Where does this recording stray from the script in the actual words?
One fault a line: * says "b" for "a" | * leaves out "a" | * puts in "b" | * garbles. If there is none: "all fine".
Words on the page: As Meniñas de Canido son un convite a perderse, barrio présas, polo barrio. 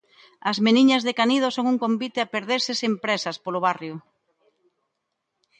* says "sen" for "barrio"